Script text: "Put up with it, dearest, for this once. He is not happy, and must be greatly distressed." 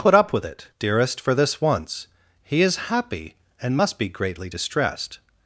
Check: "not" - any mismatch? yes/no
yes